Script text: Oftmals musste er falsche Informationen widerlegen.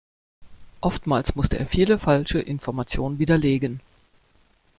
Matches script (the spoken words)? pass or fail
fail